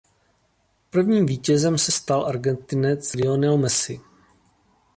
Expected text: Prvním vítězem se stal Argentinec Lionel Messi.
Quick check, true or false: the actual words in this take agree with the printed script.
true